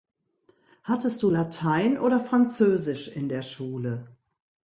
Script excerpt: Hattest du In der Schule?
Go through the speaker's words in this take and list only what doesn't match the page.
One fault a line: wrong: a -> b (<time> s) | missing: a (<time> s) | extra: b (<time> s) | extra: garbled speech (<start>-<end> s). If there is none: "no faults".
extra: Latein oder Französisch (1.3 s)